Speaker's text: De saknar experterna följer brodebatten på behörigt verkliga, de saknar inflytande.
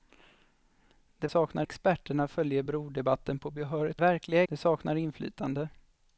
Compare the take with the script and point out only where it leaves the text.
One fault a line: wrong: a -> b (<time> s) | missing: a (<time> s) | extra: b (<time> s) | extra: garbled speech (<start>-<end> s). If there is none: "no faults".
no faults